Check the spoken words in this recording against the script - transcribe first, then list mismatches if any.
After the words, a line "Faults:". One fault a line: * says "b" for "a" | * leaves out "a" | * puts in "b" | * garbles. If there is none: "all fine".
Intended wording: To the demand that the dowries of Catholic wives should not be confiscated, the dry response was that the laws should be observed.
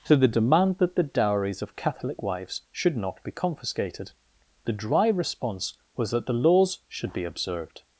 To the demand that the dowries of Catholic wives should not be confiscated, the dry response was that the laws should be observed.
Faults:
all fine